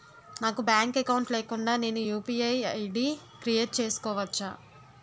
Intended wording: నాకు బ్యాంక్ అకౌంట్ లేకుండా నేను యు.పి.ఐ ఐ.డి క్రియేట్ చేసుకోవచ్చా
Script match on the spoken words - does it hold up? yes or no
yes